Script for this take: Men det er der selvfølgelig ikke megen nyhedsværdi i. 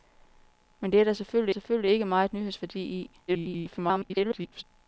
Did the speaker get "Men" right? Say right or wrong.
right